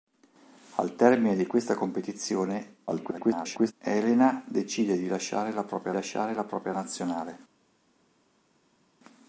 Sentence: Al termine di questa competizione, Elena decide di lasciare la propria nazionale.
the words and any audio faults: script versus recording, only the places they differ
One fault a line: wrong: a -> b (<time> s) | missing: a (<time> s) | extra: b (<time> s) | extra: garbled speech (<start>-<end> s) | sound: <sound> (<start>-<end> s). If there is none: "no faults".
extra: garbled speech (2.9-3.7 s)
extra: lasciare la propria (5.9 s)